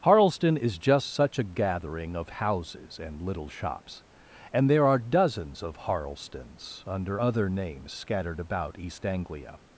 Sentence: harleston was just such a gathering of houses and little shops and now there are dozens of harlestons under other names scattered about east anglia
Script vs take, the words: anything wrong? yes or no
yes